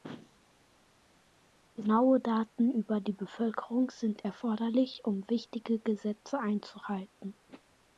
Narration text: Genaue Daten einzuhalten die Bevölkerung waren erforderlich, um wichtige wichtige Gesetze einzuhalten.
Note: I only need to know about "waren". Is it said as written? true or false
false